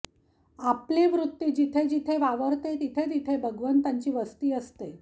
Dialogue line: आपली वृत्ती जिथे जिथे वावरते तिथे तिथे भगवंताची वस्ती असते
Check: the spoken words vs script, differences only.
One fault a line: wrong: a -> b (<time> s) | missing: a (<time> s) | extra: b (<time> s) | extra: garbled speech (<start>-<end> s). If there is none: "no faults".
no faults